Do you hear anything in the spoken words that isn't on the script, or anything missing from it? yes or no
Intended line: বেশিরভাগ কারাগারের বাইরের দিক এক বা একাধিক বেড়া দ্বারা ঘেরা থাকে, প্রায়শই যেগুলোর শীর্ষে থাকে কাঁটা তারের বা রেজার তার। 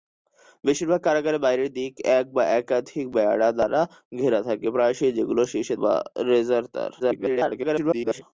yes